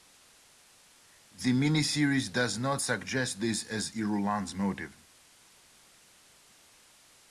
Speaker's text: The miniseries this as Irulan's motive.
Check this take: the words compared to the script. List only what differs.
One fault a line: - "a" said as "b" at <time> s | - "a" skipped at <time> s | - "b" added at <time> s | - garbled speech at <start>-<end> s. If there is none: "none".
- "does not suggest" added at 2.3 s